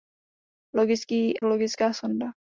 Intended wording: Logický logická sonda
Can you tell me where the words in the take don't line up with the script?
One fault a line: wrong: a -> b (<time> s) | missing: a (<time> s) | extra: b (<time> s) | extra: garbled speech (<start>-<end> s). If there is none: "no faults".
no faults